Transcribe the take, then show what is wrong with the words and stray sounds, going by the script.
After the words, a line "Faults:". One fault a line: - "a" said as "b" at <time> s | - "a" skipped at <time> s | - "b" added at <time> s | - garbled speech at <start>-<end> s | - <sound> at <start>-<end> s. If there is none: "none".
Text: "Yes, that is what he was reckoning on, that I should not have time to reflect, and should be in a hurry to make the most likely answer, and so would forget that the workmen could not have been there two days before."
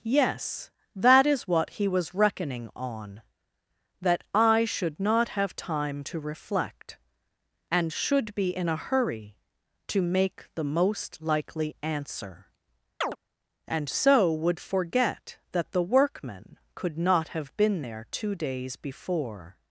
"Yes, that is what he was reckoning on, that I should not have time to reflect, and should be in a hurry to make the most likely answer, and so would forget that the workmen could not have been there two days before."
Faults:
- chirp at 13.0-13.2 s